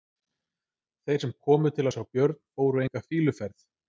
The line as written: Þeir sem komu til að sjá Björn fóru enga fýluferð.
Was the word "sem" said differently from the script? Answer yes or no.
no